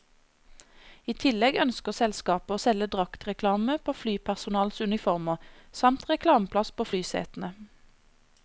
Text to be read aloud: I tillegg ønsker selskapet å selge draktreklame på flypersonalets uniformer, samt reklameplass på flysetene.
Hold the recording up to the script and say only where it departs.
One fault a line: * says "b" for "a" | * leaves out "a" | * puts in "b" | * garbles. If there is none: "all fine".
all fine